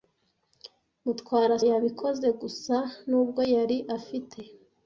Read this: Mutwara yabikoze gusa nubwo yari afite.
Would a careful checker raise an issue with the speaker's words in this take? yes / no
no